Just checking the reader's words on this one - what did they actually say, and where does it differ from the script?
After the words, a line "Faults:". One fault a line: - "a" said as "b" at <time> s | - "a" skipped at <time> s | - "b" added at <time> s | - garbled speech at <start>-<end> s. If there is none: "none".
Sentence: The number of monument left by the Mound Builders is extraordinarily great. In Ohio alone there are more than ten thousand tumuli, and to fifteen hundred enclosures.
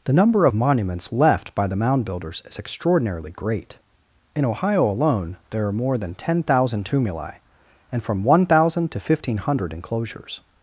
The number of monuments left by the Mound Builders is extraordinarily great. In Ohio alone there are more than ten thousand tumuli, and from one thousand to fifteen hundred enclosures.
Faults:
- "monument" said as "monuments" at 0.5 s
- "from one thousand" added at 8.0 s